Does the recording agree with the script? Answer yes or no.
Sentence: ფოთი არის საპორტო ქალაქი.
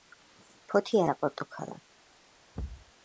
no